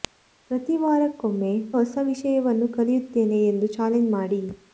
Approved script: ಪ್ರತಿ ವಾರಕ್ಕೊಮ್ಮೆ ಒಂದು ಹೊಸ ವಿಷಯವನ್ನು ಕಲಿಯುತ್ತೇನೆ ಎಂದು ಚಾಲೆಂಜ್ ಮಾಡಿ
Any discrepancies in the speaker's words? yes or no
yes